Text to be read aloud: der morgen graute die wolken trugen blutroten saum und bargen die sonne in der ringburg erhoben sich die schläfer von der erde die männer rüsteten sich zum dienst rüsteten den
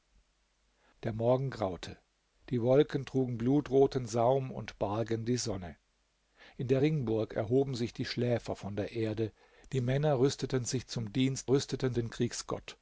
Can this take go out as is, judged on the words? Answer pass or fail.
pass